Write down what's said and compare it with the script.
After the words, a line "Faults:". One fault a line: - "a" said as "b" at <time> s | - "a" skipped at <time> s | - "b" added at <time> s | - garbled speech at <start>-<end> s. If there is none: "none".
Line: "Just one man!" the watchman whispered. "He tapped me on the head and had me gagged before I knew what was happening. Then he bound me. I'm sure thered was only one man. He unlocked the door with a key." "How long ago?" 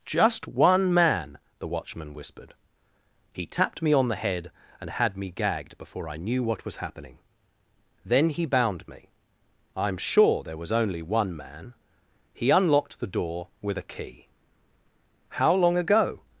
"Just one man!" the watchman whispered. "He tapped me on the head and had me gagged before I knew what was happening. Then he bound me. I'm sure there was only one man. He unlocked the door with a key." "How long ago?"
Faults:
- "thered" said as "there" at 10.4 s